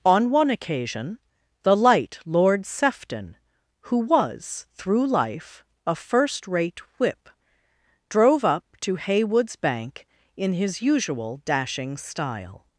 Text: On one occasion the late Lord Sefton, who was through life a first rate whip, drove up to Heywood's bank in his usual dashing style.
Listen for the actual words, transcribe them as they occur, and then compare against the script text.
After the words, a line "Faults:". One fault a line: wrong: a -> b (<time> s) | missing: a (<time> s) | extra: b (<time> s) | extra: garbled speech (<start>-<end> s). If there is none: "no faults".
On one occasion the light Lord Sefton, who was through life a first rate whip, drove up to Heywood's bank in his usual dashing style.
Faults:
wrong: late -> light (1.8 s)